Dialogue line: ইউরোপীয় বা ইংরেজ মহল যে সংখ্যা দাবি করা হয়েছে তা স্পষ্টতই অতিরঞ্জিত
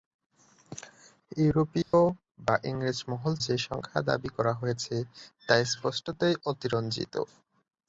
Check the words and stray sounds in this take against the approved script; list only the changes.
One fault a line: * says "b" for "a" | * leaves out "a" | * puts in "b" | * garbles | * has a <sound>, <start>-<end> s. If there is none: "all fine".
* has a dropout, 1.8-1.9 s